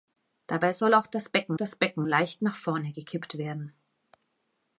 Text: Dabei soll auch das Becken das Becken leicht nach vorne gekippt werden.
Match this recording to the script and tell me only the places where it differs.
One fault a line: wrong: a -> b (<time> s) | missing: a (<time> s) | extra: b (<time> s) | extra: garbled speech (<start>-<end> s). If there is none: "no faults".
no faults